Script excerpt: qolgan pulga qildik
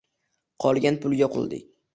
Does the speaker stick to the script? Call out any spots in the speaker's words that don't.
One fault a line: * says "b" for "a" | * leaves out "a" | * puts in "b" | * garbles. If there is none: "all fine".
all fine